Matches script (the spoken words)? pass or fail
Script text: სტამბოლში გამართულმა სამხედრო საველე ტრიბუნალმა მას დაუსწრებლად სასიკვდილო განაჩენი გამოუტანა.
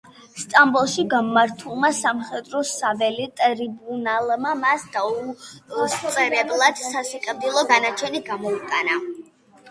pass